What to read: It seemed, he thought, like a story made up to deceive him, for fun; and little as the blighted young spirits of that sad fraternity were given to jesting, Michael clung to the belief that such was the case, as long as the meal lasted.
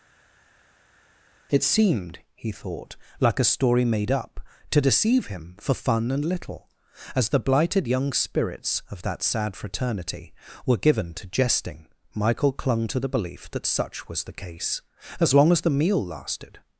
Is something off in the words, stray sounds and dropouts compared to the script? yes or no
no